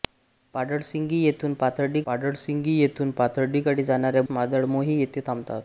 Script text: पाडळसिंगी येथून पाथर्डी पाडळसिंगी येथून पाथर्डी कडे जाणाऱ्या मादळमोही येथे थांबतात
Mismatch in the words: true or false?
false